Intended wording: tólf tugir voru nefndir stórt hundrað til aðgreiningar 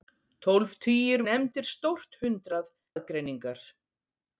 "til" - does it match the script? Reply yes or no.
no